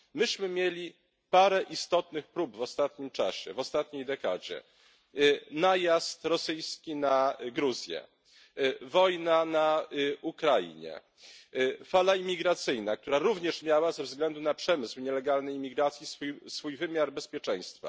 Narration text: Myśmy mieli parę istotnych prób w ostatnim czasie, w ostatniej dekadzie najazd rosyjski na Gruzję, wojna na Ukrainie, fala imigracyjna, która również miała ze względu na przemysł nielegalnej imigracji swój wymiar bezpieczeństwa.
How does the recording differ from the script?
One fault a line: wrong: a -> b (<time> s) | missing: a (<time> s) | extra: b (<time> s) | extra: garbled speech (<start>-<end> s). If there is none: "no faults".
no faults